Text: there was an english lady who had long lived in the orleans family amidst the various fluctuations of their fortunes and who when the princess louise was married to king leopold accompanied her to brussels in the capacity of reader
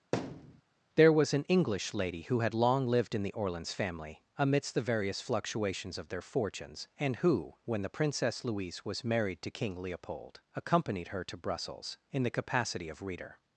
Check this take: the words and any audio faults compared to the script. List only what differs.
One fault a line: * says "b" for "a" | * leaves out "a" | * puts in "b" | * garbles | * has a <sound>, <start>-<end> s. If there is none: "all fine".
* has a thud, 0.1-0.6 s